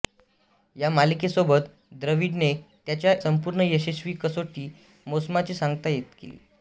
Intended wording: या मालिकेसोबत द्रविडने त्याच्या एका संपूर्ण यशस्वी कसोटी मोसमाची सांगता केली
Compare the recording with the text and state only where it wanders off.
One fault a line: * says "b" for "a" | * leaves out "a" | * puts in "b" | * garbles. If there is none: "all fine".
* leaves out "एका"